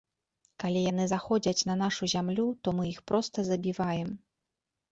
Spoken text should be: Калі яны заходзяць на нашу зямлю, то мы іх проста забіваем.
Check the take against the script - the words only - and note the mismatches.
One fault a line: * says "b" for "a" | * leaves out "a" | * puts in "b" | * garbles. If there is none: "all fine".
all fine